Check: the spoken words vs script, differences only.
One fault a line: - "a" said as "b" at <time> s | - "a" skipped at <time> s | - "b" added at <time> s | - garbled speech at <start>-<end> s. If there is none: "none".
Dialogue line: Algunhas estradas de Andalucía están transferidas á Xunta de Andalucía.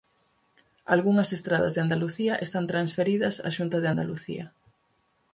none